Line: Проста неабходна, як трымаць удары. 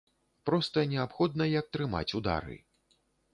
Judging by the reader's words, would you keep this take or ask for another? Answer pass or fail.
pass